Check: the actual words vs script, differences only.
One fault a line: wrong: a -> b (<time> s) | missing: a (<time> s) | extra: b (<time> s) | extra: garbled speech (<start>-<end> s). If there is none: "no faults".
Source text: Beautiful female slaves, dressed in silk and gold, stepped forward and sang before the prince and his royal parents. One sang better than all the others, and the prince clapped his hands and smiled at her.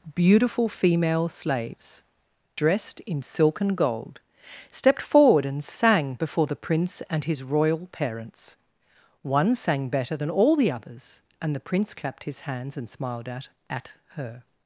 extra: at (13.7 s)